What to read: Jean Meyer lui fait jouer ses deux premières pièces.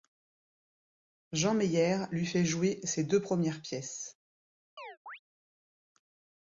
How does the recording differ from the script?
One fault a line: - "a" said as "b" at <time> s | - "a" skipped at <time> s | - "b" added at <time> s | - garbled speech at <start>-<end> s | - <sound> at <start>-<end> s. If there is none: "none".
- chirp at 4.8-5.2 s